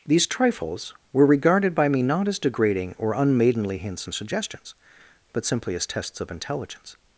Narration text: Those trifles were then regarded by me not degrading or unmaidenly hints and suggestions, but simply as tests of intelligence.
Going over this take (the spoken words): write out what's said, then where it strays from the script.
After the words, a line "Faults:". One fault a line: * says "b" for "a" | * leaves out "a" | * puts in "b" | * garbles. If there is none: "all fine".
These trifles were regarded by me not as degrading or unmaidenly hints and suggestions, but simply as tests of intelligence.
Faults:
* says "These" for "Those"
* leaves out "then"
* puts in "as"